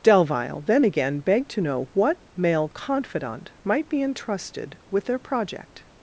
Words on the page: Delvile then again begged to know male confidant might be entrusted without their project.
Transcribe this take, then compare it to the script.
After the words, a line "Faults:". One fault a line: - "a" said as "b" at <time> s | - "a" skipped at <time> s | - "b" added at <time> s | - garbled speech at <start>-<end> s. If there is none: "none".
Delvile then again begged to know what male confidant might be entrusted with their project.
Faults:
- "what" added at 1.9 s
- "without" said as "with" at 4.9 s